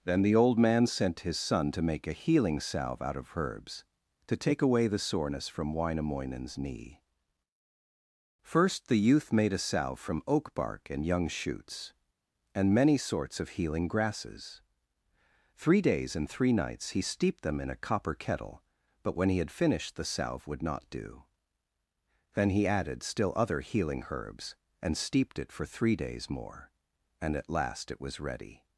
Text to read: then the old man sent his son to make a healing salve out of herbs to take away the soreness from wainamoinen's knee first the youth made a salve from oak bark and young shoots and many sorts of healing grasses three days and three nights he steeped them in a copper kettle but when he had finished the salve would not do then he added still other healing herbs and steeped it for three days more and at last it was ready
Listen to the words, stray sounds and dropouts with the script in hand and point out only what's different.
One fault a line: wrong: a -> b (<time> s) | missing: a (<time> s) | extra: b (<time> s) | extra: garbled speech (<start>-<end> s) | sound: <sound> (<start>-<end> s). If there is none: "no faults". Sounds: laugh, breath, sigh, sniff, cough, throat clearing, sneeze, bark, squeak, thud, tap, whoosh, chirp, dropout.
no faults